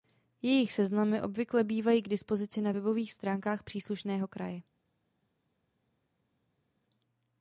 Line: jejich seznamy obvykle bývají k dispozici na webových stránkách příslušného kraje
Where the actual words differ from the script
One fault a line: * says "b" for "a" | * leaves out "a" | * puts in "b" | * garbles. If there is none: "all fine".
all fine